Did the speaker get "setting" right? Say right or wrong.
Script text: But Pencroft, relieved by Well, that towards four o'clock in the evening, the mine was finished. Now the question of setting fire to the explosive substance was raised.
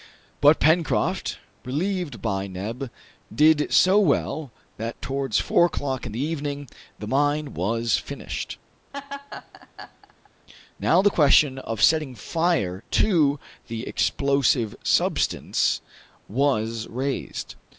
right